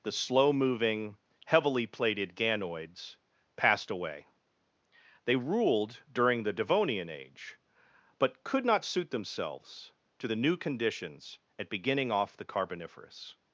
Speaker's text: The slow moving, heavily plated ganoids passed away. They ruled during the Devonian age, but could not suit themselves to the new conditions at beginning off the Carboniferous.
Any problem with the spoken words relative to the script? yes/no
no